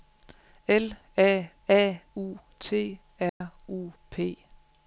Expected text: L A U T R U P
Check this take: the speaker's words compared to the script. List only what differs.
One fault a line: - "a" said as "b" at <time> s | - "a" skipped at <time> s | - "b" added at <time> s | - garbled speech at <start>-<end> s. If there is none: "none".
- "A" added at 1.7 s